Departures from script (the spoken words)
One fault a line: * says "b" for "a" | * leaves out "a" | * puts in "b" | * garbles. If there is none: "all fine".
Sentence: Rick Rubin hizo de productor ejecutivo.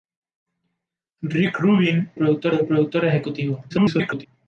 * says "productor" for "hizo"
* garbles